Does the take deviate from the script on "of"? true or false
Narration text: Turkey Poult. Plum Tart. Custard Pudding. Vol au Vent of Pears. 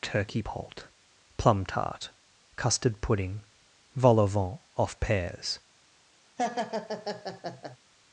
true